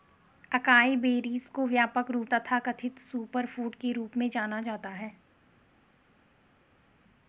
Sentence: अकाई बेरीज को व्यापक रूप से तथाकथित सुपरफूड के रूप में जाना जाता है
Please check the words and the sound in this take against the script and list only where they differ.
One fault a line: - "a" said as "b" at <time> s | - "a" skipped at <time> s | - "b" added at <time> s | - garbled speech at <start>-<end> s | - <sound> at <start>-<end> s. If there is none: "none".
- "से" skipped at 2.3 s